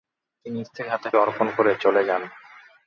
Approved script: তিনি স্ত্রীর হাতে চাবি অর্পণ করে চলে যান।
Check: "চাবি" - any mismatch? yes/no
yes